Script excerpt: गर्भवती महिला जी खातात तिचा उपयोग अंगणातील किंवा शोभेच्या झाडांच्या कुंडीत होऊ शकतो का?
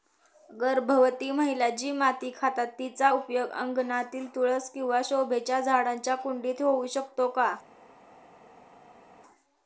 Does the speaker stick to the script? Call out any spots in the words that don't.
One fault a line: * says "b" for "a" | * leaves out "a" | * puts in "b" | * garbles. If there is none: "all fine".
* puts in "माती"
* puts in "तुळस"